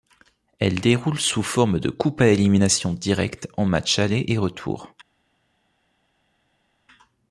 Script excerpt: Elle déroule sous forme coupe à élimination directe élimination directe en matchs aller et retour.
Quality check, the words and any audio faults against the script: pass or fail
fail